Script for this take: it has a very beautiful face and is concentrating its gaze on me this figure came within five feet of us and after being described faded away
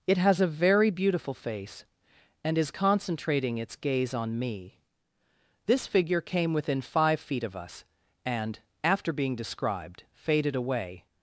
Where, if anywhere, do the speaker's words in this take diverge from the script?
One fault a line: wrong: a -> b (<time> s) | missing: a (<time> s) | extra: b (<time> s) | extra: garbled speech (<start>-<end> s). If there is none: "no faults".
no faults